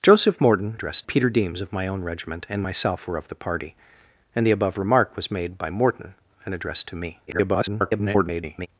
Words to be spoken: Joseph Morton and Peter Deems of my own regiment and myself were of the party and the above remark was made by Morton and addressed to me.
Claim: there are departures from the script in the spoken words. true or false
true